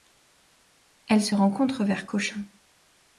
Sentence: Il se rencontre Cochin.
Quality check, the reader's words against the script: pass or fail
fail